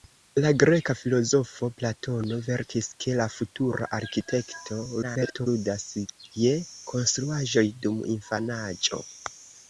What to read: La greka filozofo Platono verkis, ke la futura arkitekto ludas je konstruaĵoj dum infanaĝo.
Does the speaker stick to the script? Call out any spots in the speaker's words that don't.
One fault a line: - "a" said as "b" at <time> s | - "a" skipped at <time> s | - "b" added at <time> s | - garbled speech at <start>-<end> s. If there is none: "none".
- garbled speech at 5.0-5.5 s